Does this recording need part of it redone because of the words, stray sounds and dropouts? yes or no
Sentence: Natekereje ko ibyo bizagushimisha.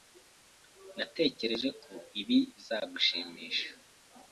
yes